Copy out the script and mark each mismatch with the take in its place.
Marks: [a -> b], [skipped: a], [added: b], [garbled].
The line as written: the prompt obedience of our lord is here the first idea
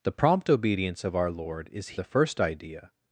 the prompt obedience of our lord is [skipped: here] the first idea